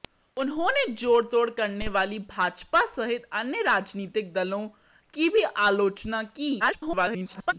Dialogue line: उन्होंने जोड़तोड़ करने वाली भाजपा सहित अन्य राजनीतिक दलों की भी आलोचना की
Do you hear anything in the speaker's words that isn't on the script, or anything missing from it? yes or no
yes